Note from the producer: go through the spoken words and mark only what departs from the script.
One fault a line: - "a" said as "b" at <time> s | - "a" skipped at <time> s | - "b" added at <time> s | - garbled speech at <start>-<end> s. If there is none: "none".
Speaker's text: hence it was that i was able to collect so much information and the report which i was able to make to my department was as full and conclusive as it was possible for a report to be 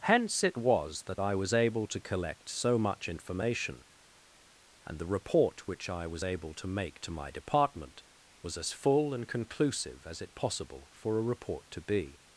- "was" skipped at 10.4 s